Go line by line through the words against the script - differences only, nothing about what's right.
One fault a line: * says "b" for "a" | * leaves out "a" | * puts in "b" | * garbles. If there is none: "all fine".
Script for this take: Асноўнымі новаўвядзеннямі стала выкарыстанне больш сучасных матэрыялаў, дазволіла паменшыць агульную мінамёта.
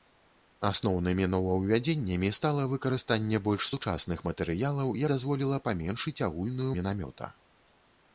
all fine